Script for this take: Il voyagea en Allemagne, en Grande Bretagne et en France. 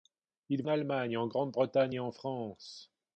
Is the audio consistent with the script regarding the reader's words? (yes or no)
no